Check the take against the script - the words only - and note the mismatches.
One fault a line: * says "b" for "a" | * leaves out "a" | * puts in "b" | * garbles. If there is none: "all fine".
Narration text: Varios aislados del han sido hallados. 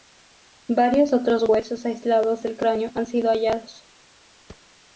* puts in "otros huesos"
* puts in "cráneo"